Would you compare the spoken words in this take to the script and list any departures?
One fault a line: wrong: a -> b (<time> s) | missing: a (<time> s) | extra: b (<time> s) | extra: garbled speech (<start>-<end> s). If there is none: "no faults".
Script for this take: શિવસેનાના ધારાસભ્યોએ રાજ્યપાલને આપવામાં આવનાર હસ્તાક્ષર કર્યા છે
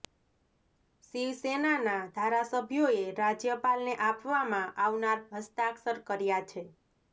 no faults